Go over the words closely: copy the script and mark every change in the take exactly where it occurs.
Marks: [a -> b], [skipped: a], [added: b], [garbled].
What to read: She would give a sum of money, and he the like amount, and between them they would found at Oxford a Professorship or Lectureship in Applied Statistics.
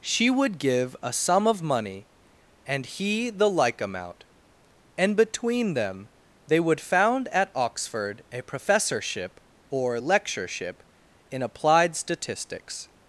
She would give a sum of money, and he the like amount, and between them they would found at Oxford a Professorship or Lectureship in Applied Statistics.